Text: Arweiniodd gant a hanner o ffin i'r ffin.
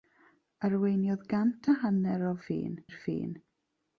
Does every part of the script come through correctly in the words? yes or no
yes